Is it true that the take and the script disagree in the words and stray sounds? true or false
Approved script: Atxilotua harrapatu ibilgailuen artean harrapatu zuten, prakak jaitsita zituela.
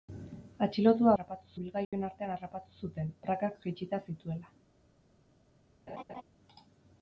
true